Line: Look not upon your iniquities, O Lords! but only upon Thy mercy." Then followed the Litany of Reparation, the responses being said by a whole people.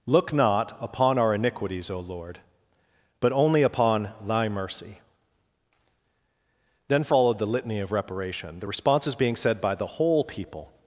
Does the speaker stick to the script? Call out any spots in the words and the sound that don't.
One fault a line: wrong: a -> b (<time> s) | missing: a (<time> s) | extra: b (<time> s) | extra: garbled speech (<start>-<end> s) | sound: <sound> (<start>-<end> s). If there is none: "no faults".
wrong: your -> our (1.2 s)
wrong: Lords -> Lord (2.0 s)
wrong: a -> the (9.7 s)